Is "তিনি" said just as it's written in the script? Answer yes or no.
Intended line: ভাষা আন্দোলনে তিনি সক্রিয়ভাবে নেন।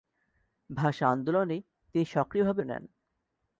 yes